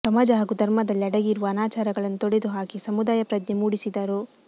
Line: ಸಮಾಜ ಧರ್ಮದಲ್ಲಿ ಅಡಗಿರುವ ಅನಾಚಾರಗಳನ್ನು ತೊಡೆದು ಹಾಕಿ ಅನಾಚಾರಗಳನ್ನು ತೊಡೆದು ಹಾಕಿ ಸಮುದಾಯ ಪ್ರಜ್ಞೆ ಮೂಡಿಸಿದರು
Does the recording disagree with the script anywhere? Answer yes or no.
yes